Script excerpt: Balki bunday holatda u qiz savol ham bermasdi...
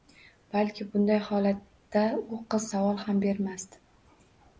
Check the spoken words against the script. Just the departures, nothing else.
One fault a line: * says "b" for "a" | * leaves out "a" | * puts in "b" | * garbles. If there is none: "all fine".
all fine